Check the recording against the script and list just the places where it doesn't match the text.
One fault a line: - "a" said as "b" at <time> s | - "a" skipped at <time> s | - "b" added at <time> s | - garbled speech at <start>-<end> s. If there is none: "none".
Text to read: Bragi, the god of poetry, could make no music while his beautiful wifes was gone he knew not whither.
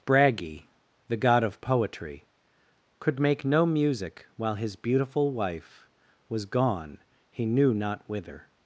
- "wifes" said as "wife" at 5.3 s